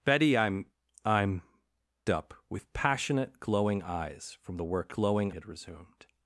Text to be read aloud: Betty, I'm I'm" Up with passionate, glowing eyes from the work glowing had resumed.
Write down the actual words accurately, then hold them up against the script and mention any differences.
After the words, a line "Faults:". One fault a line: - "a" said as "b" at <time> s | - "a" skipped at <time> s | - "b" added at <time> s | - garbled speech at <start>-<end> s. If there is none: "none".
Betty, I'm I'm" Up with passionate, glowing eyes from the work glowing had resumed.
Faults:
none